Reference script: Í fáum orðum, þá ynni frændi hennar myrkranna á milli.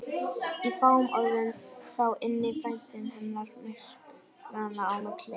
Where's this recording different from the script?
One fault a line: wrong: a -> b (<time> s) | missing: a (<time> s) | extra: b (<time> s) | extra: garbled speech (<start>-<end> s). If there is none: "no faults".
no faults